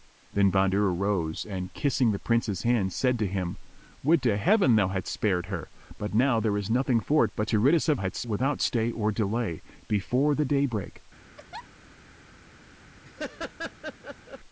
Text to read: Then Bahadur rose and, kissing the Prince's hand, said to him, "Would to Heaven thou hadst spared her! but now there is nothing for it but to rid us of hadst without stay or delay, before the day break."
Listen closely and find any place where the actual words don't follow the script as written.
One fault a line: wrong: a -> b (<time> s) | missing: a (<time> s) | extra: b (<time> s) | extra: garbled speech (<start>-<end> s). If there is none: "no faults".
no faults